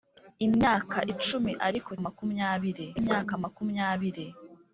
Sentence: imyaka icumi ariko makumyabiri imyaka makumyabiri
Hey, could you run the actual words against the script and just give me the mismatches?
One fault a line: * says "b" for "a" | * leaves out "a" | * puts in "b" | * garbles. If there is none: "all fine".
all fine